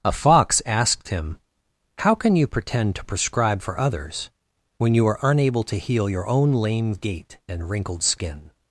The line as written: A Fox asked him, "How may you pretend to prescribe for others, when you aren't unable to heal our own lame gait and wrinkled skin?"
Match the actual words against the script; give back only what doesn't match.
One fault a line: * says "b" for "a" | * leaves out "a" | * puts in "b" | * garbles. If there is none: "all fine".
* says "can" for "may"
* says "are" for "aren't"
* says "your" for "our"